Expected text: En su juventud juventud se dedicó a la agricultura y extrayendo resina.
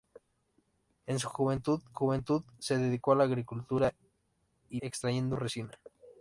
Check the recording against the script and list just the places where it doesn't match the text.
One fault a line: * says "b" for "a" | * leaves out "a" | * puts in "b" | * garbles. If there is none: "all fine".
all fine